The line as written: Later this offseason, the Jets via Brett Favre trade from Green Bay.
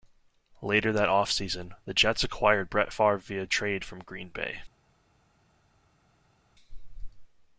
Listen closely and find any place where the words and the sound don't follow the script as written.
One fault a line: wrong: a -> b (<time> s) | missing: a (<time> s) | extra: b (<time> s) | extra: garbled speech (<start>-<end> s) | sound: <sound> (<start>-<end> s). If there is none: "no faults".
wrong: this -> that (0.9 s)
wrong: via -> acquired (2.2 s)
extra: via (3.2 s)